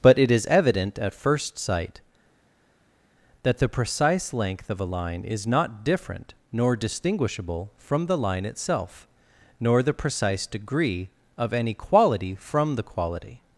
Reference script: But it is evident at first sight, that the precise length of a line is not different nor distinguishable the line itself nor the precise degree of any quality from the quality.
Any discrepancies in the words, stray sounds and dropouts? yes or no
yes